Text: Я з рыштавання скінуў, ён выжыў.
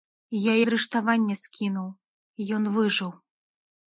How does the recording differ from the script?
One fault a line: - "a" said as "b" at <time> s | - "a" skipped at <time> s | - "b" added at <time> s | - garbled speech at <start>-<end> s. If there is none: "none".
none